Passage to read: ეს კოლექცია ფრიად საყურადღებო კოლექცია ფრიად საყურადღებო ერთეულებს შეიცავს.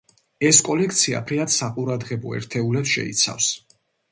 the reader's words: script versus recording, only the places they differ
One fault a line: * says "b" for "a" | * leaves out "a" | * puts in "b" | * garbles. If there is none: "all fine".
* leaves out "კოლექცია ფრიად საყურადღებო"